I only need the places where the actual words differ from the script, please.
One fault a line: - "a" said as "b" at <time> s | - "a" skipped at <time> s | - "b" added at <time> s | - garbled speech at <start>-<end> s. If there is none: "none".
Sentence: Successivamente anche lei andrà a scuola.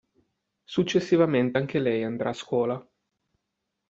none